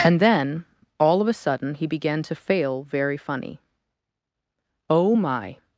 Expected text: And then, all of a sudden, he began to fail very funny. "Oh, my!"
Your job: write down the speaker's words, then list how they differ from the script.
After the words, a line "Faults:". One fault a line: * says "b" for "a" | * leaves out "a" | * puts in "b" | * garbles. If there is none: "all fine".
And then, all of a sudden, he began to fail very funny. "Oh, my!"
Faults:
all fine